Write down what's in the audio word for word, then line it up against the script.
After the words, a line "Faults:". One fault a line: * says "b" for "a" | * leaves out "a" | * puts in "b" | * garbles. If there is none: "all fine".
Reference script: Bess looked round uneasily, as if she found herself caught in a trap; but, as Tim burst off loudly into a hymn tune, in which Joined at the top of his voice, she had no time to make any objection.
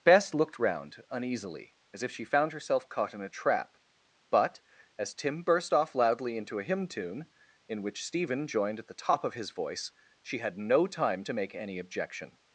Bess looked round uneasily, as if she found herself caught in a trap; but, as Tim burst off loudly into a hymn tune, in which Stephen joined at the top of his voice, she had no time to make any objection.
Faults:
* puts in "Stephen"